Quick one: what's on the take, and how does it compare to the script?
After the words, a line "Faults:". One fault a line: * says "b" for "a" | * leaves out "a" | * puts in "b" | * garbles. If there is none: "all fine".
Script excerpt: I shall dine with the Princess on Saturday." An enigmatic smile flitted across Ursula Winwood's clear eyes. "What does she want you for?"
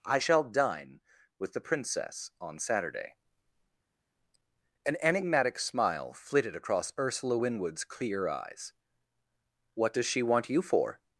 I shall dine with the Princess on Saturday." An enigmatic smile flitted across Ursula Winwood's clear eyes. "What does she want you for?"
Faults:
all fine